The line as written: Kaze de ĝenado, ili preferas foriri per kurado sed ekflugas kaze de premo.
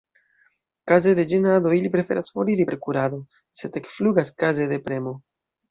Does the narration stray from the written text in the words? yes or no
no